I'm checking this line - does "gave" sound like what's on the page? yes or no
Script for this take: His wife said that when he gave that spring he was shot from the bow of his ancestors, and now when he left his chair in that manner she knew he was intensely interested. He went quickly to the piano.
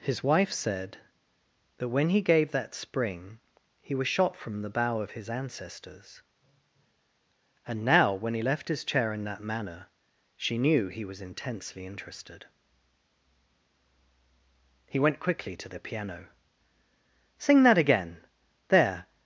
yes